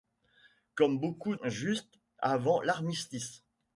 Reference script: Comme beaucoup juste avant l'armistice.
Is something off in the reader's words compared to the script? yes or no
no